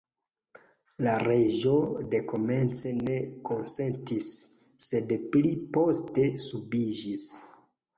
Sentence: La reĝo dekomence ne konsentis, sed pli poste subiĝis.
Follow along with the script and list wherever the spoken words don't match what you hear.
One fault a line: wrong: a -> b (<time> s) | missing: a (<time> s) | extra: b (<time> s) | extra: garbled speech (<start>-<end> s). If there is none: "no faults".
no faults